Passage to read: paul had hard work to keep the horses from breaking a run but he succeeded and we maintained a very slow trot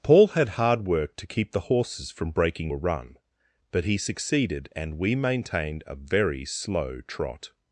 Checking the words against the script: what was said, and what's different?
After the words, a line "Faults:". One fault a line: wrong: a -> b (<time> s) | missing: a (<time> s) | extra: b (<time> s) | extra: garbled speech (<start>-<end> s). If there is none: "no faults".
paul had hard work to keep the horses from breaking a run but he succeeded and we maintained a very slow trot
Faults:
no faults